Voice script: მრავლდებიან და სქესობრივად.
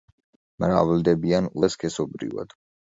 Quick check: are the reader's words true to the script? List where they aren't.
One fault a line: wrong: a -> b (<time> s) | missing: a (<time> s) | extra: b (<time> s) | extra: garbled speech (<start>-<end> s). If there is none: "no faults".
no faults